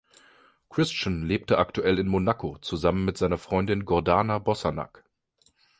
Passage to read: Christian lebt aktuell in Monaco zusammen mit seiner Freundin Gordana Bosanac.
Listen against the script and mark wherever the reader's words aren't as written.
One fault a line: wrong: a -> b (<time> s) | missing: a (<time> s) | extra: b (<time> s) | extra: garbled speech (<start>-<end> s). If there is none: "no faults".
no faults